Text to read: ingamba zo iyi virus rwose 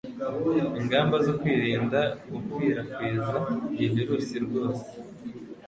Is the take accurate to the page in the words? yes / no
no